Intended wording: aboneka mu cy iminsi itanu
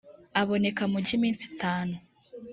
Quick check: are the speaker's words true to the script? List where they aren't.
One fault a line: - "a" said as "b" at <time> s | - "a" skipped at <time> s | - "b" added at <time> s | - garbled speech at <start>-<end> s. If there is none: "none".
none